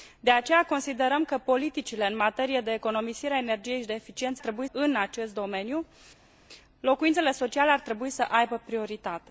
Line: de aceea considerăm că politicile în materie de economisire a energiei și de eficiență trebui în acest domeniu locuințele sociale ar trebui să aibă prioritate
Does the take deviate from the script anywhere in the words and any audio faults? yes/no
no